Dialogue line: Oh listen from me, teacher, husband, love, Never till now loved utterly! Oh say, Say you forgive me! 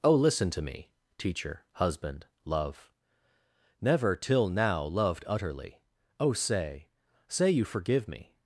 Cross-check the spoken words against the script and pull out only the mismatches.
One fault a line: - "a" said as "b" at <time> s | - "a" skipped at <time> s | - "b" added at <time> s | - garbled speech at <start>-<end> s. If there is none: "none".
- "from" said as "to" at 0.5 s